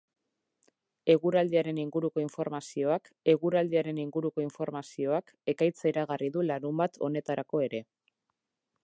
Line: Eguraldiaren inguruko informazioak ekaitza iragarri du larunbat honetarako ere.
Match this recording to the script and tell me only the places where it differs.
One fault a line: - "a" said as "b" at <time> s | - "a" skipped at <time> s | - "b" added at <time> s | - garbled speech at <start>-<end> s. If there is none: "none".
- "eguraldiaren inguruko informazioak" added at 3.3 s